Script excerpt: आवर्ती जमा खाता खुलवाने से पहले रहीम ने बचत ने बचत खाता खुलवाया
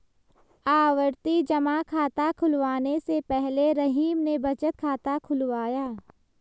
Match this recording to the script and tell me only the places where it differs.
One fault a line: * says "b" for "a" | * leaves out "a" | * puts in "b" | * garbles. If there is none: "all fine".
* leaves out "ने बचत"